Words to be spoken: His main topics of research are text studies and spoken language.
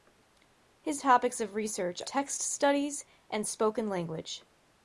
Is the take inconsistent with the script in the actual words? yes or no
yes